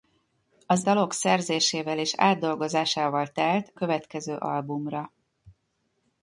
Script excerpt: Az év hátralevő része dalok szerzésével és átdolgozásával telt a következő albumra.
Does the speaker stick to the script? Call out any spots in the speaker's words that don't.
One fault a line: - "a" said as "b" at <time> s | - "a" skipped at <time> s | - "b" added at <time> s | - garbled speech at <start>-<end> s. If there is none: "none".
- "év hátralevő része" skipped at 0.8 s
- "a" skipped at 3.7 s